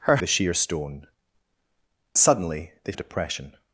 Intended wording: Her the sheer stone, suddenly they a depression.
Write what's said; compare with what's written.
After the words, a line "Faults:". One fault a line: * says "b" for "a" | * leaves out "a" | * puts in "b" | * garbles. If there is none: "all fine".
Her the sheer stone, suddenly they a depression.
Faults:
all fine